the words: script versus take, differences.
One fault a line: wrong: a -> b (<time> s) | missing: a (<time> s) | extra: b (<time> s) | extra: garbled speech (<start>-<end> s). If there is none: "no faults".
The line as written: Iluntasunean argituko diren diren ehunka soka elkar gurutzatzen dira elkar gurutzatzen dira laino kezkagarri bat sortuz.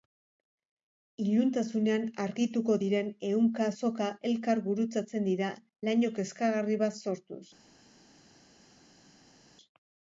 missing: diren (3.1 s)
missing: elkar gurutzatzen dira (5.5 s)